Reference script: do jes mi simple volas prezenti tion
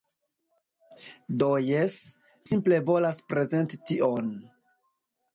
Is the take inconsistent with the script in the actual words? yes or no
yes